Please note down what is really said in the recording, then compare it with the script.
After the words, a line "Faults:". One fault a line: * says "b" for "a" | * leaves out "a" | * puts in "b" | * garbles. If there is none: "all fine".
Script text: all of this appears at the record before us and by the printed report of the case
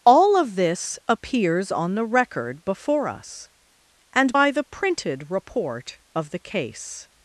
all of this appears on the record before us and by the printed report of the case
Faults:
* says "on" for "at"